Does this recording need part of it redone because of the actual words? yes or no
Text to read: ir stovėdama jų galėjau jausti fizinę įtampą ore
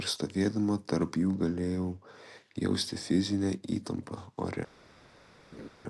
yes